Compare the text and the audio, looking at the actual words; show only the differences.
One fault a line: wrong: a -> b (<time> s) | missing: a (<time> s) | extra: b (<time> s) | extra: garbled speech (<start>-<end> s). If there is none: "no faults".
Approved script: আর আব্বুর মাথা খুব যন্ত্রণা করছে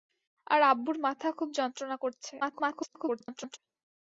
extra: garbled speech (2.4-3.6 s)